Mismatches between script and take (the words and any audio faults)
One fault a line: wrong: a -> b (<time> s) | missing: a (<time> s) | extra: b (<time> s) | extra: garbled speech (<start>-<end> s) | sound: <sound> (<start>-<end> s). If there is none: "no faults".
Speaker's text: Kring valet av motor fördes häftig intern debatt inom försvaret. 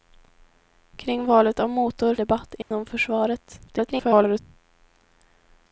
missing: fördes häftig intern (2.1 s)
sound: dropout (2.6-2.7 s)
extra: garbled speech (3.7-4.4 s)